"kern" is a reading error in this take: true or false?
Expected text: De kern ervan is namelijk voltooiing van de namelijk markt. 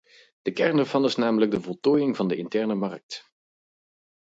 false